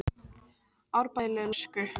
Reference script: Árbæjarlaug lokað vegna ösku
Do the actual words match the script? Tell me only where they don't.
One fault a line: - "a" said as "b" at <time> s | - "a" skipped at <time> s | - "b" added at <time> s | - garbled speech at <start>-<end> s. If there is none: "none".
- "lokað vegna" skipped at 1.5 s